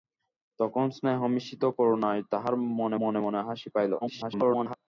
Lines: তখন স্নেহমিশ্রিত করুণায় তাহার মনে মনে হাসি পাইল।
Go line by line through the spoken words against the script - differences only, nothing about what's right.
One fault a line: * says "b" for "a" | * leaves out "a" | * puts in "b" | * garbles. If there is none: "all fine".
* puts in "মনে"
* garbles